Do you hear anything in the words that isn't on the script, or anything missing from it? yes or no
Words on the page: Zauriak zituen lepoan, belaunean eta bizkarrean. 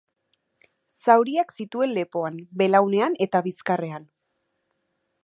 no